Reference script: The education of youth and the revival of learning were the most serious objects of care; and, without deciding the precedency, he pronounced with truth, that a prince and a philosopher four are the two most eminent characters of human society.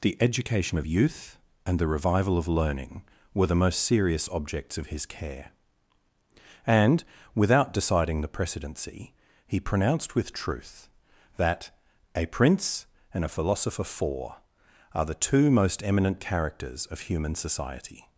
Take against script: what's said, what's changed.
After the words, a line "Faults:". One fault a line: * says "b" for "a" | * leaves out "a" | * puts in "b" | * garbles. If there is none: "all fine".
The education of youth and the revival of learning were the most serious objects of his care; and, without deciding the precedency, he pronounced with truth, that a prince and a philosopher four are the two most eminent characters of human society.
Faults:
* puts in "his"